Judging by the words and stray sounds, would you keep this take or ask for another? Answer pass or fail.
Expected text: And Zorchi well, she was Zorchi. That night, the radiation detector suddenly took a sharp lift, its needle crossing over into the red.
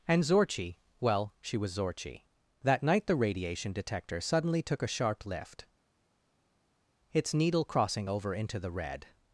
pass